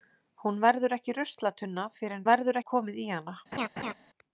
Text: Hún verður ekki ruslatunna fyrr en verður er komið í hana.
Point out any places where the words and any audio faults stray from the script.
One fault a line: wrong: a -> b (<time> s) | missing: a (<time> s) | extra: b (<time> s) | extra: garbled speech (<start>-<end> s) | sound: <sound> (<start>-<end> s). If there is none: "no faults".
sound: laugh (3.5-3.9 s)